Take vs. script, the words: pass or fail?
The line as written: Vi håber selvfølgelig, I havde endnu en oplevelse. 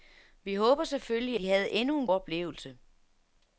pass